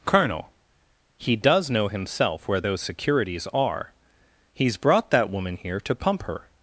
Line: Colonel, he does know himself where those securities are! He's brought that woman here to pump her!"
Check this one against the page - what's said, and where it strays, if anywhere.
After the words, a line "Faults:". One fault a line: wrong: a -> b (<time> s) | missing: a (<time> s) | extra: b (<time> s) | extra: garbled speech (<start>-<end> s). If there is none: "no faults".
Colonel, he does know himself where those securities are! He's brought that woman here to pump her!"
Faults:
no faults